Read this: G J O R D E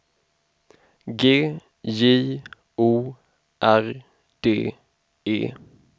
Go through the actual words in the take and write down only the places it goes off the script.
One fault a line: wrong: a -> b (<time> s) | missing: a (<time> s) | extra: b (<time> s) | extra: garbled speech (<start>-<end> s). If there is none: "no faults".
no faults